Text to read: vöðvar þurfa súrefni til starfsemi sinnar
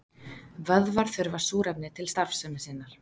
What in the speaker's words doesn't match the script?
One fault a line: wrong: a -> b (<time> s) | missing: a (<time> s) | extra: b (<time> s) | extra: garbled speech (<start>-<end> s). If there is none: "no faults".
no faults